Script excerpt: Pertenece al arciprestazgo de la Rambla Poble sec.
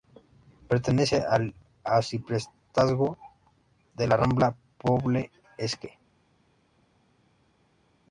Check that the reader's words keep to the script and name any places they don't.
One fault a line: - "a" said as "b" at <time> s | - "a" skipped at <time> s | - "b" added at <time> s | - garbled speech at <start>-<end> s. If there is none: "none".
none